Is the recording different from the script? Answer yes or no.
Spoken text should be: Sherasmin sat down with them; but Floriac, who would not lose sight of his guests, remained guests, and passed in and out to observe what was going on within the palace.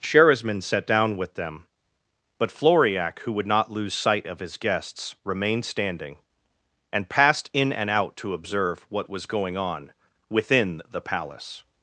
yes